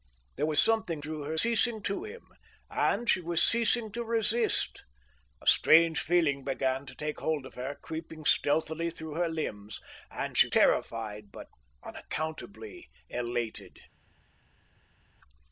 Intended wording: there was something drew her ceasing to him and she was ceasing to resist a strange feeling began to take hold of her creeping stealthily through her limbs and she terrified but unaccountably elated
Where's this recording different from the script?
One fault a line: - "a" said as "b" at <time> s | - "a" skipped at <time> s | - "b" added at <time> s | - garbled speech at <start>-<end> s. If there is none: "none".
none